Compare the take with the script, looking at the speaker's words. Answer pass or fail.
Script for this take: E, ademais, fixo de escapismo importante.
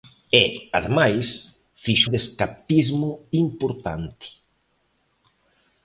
pass